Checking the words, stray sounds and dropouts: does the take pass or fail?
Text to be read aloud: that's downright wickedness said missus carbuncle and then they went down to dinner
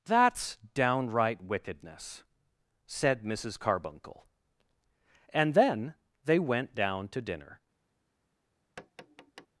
fail